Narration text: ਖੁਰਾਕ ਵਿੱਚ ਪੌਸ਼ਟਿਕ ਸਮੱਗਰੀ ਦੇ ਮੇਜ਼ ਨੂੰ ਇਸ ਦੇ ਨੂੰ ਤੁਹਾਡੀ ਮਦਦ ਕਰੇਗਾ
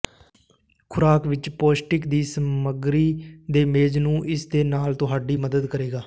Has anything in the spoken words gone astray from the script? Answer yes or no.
yes